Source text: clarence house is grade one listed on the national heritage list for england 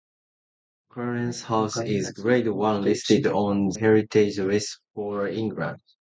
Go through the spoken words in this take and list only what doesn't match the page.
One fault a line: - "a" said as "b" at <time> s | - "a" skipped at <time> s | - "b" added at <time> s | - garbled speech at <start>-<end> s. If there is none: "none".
- "the national" skipped at 3.7 s